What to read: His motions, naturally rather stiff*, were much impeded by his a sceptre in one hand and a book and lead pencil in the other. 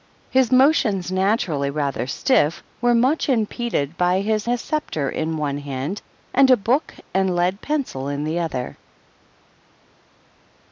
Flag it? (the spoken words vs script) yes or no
no